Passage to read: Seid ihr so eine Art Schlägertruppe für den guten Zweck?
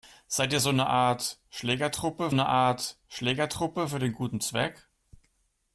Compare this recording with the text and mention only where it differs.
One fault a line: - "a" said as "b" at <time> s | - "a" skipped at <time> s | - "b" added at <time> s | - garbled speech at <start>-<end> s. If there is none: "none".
- "eine Art Schlägertruppe" added at 2.3 s